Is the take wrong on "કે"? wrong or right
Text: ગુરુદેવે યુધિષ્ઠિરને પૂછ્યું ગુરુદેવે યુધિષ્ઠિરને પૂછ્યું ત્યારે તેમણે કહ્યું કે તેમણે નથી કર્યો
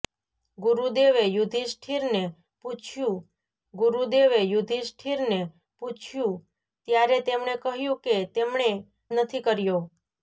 right